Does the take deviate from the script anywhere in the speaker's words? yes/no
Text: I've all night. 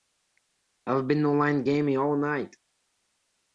yes